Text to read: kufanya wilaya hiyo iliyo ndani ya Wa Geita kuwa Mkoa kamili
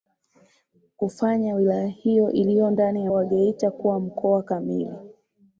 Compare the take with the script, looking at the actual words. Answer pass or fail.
pass